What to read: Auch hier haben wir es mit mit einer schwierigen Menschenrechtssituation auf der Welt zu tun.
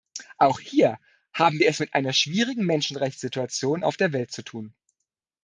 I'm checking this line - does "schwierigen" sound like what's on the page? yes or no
yes